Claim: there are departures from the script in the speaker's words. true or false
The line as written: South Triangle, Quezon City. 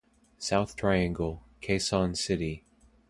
false